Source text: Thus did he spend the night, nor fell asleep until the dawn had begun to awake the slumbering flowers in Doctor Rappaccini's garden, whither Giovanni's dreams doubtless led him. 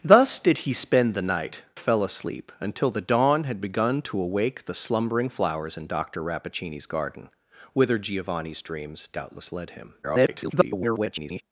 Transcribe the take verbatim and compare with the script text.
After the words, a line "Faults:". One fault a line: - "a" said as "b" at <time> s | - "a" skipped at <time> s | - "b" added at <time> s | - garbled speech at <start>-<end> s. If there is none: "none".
Thus did he spend the night, fell asleep until the dawn had begun to awake the slumbering flowers in Doctor Rappaccini's garden, whither Giovanni's dreams doubtless led him. [garbled]
Faults:
- "nor" skipped at 1.6 s
- garbled speech at 10.0-11.4 s